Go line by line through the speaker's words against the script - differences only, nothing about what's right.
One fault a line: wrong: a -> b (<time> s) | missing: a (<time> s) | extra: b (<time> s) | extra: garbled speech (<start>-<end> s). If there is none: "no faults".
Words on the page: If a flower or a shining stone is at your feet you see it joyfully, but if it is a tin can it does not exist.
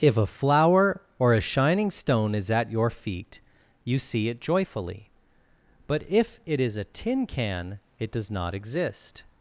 no faults